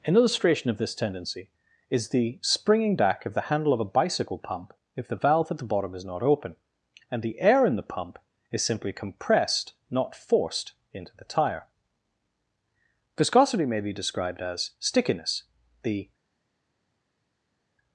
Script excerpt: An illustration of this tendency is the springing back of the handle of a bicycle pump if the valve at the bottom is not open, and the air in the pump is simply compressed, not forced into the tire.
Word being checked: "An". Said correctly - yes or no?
yes